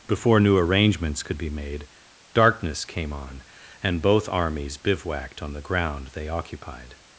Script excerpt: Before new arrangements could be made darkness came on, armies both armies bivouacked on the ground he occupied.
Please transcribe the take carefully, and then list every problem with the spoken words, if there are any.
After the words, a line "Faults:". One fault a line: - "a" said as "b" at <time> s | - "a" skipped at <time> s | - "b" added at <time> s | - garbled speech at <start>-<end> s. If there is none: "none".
Before new arrangements could be made darkness came on, and both armies bivouacked on the ground they occupied.
Faults:
- "armies" said as "and" at 3.8 s
- "he" said as "they" at 6.1 s